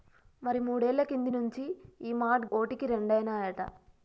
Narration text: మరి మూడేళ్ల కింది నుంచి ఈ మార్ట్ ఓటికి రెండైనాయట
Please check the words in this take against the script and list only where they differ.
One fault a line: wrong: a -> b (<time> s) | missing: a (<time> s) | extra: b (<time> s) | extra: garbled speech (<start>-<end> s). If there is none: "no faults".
no faults